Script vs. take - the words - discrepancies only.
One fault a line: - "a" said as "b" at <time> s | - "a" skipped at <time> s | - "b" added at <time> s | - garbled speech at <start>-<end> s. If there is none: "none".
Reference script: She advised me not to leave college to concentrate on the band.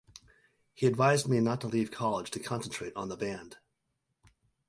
- "She" said as "He" at 0.7 s